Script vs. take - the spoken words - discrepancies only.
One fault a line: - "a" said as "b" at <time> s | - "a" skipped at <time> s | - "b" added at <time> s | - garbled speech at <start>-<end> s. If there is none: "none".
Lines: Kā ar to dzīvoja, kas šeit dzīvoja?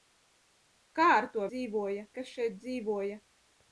none